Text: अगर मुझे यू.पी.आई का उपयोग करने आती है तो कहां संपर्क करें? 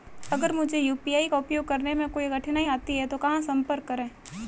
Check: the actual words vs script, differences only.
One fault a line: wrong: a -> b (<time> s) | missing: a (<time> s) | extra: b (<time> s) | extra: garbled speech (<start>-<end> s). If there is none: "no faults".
extra: में कोई कठिनाई (1.9 s)